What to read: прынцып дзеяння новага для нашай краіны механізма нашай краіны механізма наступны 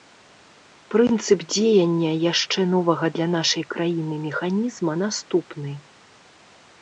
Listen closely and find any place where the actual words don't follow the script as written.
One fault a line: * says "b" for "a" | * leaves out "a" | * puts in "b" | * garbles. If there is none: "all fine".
* puts in "яшчэ"
* leaves out "нашай краіны механізма"